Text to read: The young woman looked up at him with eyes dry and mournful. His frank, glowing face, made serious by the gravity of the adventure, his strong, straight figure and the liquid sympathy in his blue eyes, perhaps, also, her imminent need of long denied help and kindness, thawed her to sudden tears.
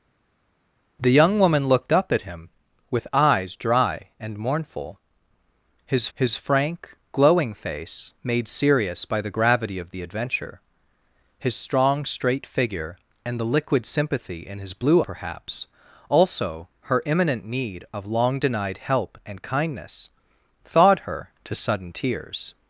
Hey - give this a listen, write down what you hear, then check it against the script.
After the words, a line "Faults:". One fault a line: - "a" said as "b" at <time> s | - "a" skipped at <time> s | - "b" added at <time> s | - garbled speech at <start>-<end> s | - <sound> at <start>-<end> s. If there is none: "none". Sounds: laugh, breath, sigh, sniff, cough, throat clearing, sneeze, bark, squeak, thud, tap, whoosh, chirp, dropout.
The young woman looked up at him with eyes dry and mournful. His his frank, glowing face, made serious by the gravity of the adventure, his strong, straight figure and the liquid sympathy in his blue perhaps, also, her imminent need of long denied help and kindness, thawed her to sudden tears.
Faults:
- "his" added at 6.1 s
- "eyes" skipped at 15.0 s